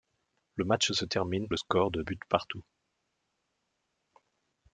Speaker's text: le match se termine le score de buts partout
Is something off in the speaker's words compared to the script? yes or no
no